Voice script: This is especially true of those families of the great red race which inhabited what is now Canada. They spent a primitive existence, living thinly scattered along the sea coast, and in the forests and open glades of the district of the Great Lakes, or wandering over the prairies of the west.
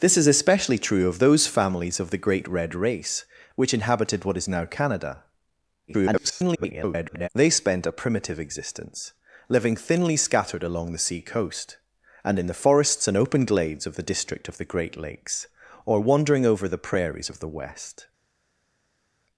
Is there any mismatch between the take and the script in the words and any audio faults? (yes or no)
yes